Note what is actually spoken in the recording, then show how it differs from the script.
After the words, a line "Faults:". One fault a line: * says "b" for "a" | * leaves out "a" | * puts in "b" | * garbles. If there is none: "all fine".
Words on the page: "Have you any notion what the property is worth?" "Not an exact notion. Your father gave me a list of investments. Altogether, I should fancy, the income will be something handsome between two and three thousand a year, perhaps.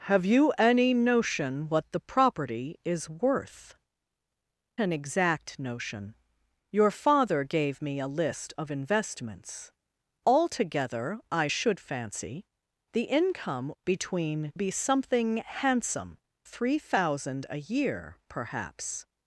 "Have you any notion what the property is worth?" "An exact notion. Your father gave me a list of investments. Altogether, I should fancy, the income between be something handsome three thousand a year, perhaps.
Faults:
* leaves out "Not"
* says "between" for "will"
* leaves out "between two and"